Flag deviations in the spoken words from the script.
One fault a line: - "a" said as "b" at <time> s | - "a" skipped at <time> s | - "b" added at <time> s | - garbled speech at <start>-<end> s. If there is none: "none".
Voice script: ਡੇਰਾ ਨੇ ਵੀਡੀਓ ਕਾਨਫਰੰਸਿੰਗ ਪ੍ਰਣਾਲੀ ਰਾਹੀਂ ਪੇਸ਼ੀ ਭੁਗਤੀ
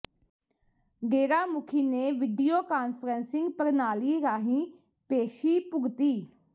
- "ਮੁਖੀ" added at 1.4 s